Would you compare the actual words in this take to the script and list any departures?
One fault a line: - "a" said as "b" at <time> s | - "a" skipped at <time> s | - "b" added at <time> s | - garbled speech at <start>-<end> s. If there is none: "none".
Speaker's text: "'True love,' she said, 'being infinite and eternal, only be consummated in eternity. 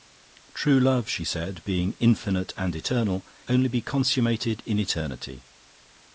none